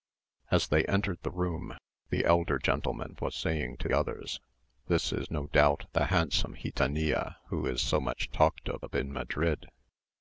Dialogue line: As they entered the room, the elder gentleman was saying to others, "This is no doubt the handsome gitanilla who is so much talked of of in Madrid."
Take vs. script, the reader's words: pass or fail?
pass